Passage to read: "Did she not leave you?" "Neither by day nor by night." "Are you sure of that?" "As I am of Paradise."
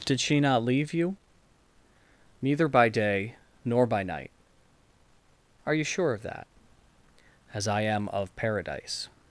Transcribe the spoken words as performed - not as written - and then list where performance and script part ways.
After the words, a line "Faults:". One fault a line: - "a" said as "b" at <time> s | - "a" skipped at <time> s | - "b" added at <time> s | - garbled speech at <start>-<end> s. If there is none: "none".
"Did she not leave you?" "Neither by day nor by night." "Are you sure of that?" "As I am of Paradise."
Faults:
none